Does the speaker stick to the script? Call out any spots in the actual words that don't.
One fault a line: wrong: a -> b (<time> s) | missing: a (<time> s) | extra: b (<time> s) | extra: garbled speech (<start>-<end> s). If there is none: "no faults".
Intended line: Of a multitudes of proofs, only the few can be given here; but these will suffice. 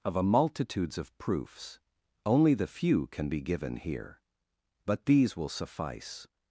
no faults